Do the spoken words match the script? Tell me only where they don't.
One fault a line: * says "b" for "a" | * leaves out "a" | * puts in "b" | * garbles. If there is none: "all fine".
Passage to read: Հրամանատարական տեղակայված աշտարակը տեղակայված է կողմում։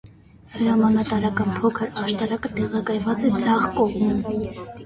* says "փոքր" for "տեղակայված"
* puts in "ձախ"